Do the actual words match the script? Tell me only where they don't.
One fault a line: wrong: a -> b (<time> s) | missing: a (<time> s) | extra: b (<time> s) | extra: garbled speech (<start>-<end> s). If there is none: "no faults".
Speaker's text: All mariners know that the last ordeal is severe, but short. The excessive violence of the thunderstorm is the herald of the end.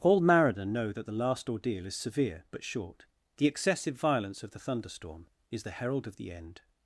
wrong: mariners -> mariner (0.2 s)